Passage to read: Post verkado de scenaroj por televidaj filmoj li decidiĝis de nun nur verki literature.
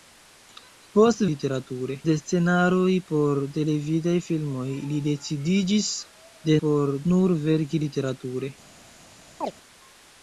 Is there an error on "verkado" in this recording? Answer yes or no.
yes